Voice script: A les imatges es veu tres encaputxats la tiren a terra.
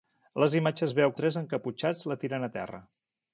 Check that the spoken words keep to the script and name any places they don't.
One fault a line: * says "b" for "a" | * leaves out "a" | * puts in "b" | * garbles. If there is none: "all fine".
all fine